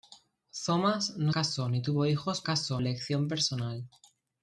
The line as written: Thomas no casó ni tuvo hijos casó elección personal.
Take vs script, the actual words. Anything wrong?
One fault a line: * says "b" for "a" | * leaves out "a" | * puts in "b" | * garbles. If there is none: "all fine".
all fine